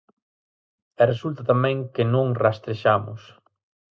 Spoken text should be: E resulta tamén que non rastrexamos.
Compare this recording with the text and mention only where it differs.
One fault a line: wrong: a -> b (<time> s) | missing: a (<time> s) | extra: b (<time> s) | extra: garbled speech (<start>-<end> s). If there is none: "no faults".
no faults